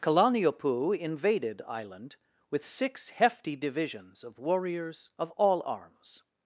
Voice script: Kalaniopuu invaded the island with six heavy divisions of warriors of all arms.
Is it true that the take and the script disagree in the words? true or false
true